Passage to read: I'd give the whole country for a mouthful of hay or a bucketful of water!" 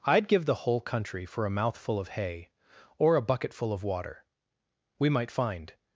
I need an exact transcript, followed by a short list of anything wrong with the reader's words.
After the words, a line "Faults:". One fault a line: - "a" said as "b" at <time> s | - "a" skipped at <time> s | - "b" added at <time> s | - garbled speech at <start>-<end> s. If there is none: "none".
I'd give the whole country for a mouthful of hay or a bucketful of water!" "We might find
Faults:
- "We might find" added at 5.0 s